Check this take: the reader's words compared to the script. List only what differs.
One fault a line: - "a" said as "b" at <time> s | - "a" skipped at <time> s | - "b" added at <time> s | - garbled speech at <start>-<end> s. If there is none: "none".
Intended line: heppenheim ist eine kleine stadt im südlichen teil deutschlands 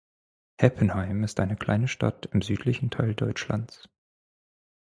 none